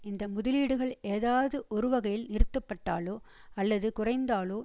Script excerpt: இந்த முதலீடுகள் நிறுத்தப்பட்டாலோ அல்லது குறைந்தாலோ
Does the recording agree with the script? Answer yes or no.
no